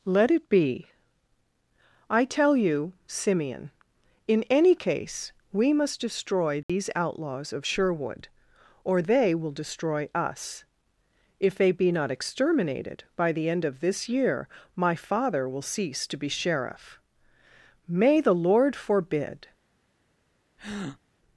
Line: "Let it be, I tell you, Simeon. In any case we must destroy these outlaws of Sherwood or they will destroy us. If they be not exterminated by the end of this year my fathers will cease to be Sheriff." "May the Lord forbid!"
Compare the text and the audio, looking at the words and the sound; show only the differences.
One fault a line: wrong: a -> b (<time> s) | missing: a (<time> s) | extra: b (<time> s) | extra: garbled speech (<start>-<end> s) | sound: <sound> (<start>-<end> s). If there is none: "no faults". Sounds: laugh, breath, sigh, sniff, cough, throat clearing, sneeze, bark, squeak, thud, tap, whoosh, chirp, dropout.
sound: dropout (6.6-6.7 s)
wrong: fathers -> father (14.9 s)
sound: breath (20.6-21.0 s)